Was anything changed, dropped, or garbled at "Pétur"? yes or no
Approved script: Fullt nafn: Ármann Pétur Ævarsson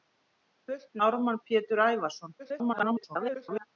no